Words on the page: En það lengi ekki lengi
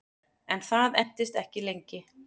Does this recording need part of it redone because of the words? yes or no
yes